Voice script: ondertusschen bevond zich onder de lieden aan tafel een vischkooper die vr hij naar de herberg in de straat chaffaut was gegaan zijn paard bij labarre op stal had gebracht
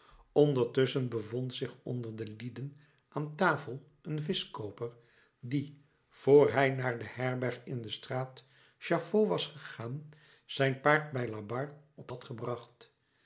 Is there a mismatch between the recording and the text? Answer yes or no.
yes